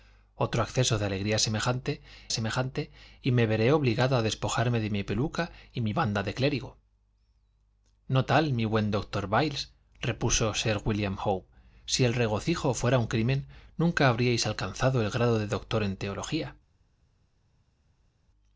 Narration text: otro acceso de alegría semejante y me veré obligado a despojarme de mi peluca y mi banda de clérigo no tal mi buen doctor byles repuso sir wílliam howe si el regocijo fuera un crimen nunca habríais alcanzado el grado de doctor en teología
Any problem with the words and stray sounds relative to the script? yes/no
yes